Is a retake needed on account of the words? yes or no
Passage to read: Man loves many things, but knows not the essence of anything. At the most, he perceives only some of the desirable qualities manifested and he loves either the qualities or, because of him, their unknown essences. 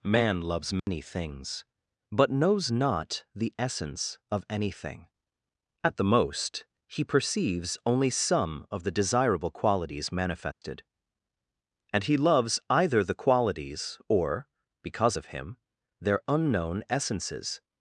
no